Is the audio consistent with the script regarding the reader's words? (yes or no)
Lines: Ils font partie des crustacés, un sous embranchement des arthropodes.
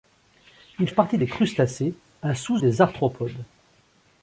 no